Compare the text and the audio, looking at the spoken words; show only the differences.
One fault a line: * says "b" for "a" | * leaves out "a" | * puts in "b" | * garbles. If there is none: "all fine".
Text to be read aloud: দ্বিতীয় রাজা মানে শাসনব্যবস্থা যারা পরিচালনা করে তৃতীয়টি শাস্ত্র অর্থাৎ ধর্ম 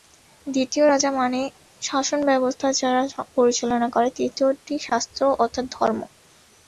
all fine